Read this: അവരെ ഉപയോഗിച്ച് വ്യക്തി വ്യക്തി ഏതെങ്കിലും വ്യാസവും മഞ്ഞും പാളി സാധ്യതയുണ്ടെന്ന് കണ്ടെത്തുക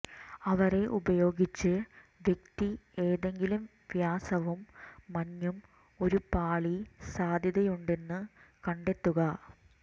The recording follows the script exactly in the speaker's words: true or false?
false